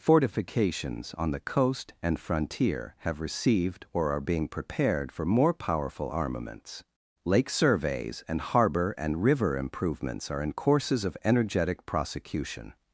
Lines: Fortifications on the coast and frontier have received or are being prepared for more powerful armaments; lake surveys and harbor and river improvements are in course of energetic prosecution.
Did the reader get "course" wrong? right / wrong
wrong